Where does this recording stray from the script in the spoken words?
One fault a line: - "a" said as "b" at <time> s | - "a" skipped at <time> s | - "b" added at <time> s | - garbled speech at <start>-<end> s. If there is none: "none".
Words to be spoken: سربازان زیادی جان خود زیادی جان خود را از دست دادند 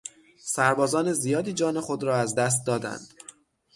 - "زیادی جان خود" skipped at 2.0 s